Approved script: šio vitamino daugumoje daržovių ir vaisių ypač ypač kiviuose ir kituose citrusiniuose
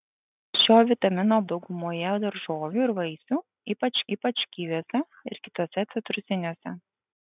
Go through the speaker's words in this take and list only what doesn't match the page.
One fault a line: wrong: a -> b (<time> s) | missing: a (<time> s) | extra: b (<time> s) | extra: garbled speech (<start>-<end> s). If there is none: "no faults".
no faults